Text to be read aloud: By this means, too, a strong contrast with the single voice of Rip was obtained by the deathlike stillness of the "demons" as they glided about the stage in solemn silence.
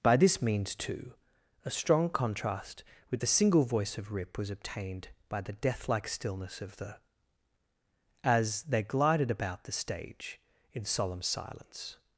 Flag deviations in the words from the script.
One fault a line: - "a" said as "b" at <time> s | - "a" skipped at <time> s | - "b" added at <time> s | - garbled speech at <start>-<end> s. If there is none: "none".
- "demons" skipped at 7.0 s